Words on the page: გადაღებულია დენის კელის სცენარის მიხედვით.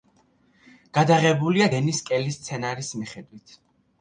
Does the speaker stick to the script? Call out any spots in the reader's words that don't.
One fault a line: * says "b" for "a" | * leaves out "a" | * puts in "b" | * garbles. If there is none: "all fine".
all fine